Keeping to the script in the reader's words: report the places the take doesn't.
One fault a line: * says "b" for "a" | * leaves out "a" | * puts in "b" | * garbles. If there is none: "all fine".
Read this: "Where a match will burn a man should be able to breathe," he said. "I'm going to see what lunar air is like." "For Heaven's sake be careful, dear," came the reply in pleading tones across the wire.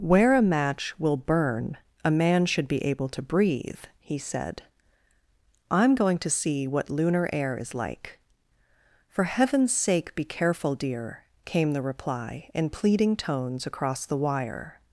all fine